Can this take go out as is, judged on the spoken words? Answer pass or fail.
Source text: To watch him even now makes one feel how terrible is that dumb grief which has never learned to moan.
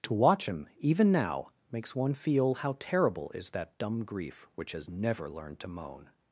pass